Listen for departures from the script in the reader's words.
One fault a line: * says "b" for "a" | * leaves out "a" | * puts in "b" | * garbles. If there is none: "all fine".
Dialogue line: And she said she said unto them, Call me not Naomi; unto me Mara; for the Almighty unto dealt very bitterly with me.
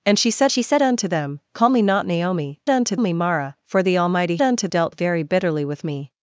all fine